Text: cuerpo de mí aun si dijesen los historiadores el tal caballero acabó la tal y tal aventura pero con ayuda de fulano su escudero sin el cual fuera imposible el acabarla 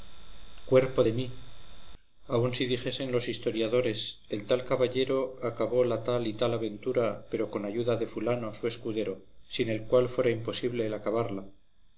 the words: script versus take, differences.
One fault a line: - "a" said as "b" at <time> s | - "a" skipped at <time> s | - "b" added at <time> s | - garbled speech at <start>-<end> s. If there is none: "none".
none